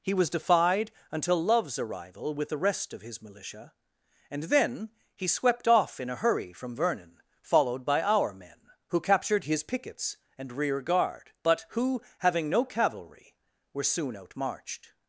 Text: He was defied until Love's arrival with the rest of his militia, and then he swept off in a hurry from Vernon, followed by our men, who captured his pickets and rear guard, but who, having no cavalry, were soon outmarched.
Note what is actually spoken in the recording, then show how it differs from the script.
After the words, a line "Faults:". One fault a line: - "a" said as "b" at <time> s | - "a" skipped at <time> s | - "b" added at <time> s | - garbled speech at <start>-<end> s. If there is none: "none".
He was defied until Love's arrival with the rest of his militia, and then he swept off in a hurry from Vernon, followed by our men, who captured his pickets and rear guard, but who, having no cavalry, were soon outmarched.
Faults:
none